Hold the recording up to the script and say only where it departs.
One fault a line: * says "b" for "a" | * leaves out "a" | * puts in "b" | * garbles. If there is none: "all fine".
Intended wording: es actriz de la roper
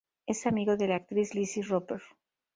* says "amigo" for "actriz"
* puts in "actriz lizzie"